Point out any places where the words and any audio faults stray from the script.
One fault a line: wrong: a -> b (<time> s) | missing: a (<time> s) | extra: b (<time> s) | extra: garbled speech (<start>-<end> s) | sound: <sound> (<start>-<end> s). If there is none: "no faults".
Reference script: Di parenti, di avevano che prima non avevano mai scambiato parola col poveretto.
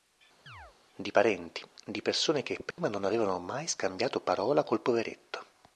sound: chirp (0.5-0.8 s)
wrong: avevano -> persone (2.0 s)
sound: dropout (2.7-2.8 s)